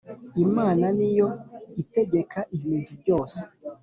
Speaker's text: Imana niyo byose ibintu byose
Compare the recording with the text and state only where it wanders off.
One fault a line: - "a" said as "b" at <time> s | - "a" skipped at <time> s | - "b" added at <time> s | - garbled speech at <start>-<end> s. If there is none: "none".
- "byose" said as "itegeka" at 1.8 s